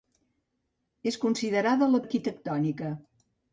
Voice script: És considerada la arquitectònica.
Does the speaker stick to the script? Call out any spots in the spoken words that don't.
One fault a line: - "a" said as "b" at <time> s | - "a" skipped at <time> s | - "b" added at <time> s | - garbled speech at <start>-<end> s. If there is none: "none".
none